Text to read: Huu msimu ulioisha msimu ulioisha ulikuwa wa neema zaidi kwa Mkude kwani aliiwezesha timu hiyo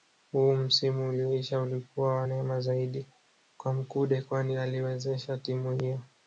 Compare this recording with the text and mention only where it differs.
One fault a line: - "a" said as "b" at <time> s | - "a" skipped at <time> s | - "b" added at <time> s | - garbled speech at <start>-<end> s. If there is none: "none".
- "msimu ulioisha" skipped at 1.6 s